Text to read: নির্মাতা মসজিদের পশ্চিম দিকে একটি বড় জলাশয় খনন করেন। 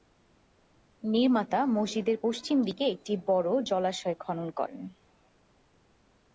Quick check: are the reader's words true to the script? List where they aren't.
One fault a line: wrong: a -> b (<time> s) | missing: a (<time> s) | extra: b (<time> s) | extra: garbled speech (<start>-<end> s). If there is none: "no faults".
no faults